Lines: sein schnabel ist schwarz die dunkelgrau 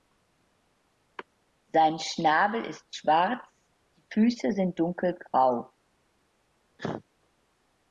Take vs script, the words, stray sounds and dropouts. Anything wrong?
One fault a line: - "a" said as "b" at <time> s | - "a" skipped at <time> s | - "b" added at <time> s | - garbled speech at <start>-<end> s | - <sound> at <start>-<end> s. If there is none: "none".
- "füße sind" added at 4.1 s
- cough at 6.8-7.0 s